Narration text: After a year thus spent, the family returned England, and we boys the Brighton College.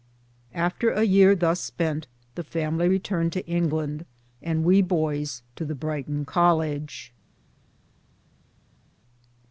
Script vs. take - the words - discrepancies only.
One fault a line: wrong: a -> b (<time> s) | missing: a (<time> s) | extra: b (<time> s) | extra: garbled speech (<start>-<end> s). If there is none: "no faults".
extra: to (3.3 s)
extra: to (5.5 s)